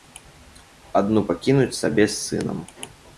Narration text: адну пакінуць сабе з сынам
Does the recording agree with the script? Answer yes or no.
yes